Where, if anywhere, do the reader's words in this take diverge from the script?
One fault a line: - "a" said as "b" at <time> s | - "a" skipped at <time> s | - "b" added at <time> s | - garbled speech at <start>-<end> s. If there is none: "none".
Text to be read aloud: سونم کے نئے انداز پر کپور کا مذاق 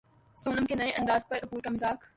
none